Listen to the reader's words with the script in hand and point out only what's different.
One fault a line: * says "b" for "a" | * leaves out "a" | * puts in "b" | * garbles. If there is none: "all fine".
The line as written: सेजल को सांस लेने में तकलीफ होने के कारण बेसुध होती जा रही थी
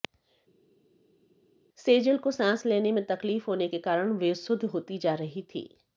all fine